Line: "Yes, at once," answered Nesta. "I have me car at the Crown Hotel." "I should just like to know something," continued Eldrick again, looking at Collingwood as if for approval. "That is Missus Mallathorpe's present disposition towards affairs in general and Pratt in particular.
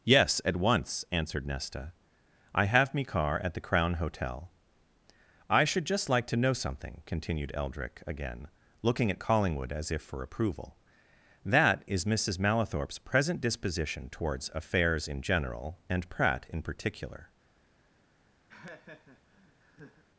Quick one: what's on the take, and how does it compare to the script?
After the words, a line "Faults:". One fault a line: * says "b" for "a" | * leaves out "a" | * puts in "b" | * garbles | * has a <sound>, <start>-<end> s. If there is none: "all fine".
"Yes, at once," answered Nesta. "I have me car at the Crown Hotel." "I should just like to know something," continued Eldrick again, looking at Collingwood as if for approval. "That is Missus Mallathorpe's present disposition towards affairs in general and Pratt in particular.
Faults:
* has a laugh, 18.5-20.0 s